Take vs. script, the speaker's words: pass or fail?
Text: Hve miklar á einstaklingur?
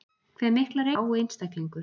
pass